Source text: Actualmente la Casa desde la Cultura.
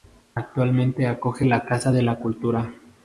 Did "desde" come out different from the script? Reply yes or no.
yes